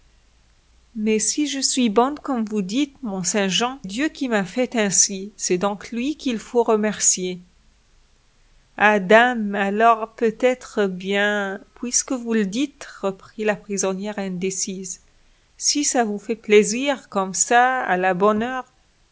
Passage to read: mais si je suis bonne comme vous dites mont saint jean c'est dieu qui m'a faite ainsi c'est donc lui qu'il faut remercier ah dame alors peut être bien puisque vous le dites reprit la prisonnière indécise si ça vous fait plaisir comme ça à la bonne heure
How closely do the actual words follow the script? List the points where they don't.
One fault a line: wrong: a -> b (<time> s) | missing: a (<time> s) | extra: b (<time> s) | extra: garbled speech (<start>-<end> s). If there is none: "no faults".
missing: c'est (3.8 s)